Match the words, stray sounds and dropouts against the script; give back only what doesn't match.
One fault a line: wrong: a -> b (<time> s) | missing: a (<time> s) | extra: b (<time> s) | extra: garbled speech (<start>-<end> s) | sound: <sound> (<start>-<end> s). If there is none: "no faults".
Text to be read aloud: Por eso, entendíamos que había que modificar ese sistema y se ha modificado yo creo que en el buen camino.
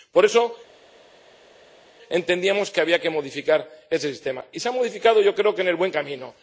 no faults